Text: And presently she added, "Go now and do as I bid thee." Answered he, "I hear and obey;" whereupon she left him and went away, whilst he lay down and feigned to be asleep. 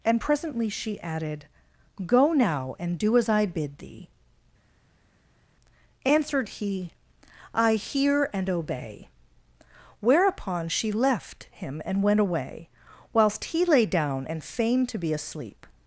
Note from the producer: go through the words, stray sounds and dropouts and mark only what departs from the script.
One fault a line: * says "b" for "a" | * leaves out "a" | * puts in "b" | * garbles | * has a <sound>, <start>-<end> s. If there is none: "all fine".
all fine